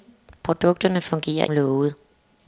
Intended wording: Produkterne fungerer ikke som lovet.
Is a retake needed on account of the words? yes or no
yes